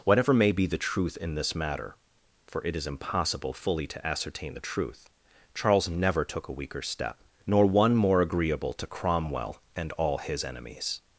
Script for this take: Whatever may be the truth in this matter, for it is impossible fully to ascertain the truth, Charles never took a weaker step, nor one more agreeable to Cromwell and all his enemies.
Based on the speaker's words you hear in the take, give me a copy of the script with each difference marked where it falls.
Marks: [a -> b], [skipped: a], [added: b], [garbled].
Whatever may be the truth in this matter, for it is impossible fully to ascertain the truth, Charles never took a weaker step, nor one more agreeable to Cromwell and all his enemies.